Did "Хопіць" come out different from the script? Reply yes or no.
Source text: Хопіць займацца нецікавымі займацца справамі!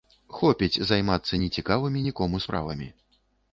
no